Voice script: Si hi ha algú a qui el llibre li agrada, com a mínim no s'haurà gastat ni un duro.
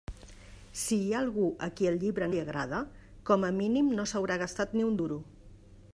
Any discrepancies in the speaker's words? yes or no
no